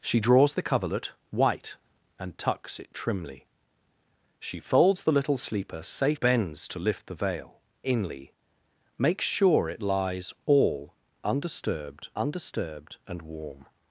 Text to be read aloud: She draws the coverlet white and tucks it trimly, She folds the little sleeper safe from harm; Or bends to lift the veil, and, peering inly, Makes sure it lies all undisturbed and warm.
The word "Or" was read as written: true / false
false